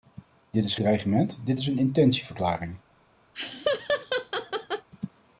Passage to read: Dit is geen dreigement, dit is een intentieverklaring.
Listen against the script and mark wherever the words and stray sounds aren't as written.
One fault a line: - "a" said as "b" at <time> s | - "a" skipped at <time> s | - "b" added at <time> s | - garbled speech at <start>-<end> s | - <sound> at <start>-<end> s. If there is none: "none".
- "geen" skipped at 0.8 s
- laugh at 3.3-4.9 s